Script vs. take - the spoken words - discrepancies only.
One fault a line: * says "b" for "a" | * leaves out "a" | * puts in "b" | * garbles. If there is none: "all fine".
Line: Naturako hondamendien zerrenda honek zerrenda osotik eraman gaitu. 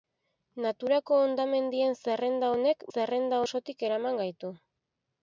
all fine